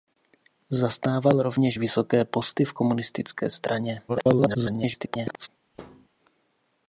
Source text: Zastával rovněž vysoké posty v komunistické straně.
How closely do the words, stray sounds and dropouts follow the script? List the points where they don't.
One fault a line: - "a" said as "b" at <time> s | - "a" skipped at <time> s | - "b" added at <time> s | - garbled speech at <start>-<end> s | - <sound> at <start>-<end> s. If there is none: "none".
- garbled speech at 4.1-5.5 s
- thud at 5.7-6.1 s